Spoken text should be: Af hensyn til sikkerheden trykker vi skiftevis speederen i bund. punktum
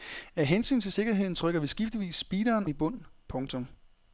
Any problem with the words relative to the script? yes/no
no